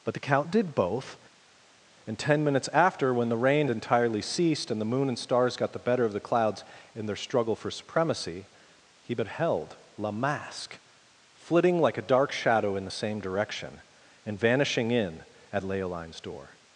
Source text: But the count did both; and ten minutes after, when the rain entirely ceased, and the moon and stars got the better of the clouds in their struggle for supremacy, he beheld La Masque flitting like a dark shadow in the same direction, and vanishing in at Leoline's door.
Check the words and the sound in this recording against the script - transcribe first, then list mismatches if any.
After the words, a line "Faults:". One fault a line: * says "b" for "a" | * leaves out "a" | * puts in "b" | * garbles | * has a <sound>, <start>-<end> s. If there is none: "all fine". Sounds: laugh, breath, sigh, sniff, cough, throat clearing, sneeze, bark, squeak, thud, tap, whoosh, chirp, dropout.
But the count did both; and ten minutes after, when the rain entirely ceased, and the moon and stars got the better of the clouds in their struggle for supremacy, he beheld La Masque flitting like a dark shadow in the same direction, and vanishing in at Leoline's door.
Faults:
all fine